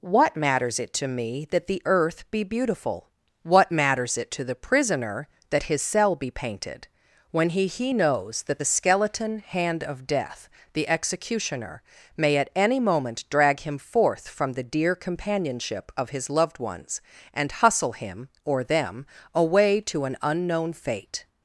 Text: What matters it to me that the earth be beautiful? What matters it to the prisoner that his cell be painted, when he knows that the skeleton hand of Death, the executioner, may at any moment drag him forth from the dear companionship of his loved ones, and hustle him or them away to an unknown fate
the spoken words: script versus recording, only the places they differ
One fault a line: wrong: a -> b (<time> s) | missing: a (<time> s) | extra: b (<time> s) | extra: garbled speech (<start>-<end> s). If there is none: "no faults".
extra: he (7.7 s)